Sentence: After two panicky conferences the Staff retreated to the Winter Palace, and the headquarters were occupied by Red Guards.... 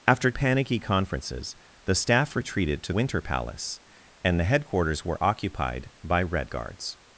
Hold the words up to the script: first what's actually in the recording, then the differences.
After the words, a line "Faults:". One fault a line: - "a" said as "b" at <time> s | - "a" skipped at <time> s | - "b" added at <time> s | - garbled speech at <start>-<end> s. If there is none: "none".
After panicky conferences the Staff retreated to Winter Palace, and the headquarters were occupied by Red Guards....
Faults:
- "two" skipped at 0.3 s
- "the" skipped at 2.9 s